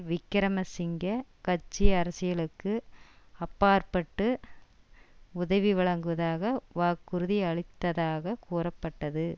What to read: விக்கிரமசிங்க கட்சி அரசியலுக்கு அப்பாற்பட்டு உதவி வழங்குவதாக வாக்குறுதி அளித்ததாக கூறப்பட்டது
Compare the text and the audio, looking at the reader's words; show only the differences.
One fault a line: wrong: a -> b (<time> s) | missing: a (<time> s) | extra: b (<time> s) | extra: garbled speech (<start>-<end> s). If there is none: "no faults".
no faults